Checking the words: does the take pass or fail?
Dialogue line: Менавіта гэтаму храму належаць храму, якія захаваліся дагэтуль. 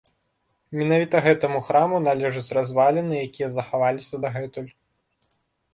fail